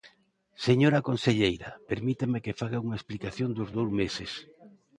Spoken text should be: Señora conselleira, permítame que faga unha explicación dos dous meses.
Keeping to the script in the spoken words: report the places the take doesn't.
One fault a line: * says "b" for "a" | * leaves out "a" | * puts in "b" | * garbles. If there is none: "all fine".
all fine